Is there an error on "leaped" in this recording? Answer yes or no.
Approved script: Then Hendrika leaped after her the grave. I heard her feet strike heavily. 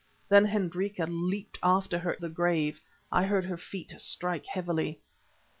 no